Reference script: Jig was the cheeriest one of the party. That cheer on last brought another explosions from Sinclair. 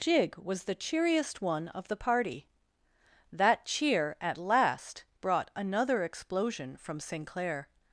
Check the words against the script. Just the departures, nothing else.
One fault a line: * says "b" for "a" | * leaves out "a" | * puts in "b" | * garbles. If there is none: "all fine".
* says "at" for "on"
* says "explosion" for "explosions"